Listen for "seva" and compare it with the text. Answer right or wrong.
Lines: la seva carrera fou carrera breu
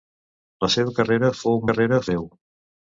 right